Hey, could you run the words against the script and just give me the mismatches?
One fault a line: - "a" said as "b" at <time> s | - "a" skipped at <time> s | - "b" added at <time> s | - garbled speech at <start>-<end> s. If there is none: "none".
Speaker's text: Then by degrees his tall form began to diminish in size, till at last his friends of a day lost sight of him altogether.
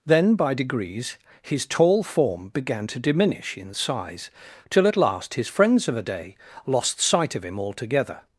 none